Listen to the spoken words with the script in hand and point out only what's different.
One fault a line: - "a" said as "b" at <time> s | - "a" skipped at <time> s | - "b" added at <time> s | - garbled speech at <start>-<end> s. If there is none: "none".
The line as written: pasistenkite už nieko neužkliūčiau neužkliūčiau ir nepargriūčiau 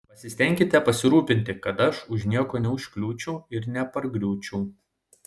- "pasirūpinti kad aš" added at 0.8 s
- "neužkliūčiau" skipped at 3.4 s